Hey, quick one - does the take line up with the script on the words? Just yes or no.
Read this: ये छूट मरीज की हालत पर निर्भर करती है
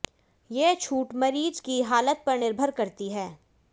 yes